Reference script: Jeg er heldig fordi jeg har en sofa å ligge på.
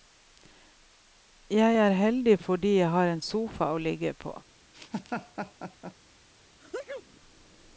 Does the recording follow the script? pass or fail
pass